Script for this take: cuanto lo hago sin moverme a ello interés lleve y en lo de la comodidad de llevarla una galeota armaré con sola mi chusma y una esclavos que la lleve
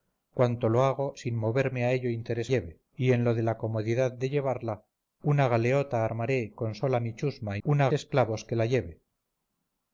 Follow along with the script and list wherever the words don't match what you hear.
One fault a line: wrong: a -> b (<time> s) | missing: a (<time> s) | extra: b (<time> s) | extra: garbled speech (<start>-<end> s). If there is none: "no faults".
no faults